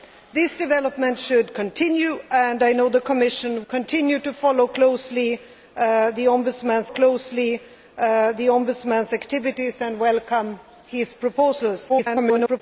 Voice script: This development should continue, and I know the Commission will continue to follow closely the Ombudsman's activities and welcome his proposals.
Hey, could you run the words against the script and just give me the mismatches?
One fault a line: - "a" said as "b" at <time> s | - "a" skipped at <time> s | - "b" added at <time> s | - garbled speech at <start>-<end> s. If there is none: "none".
- "will" skipped at 3.6 s
- "closely the Ombudsman's" added at 6.9 s
- garbled speech at 11.9-12.6 s